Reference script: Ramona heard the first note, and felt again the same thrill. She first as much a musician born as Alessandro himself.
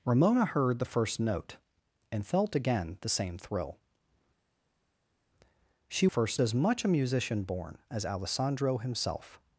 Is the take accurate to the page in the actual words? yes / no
yes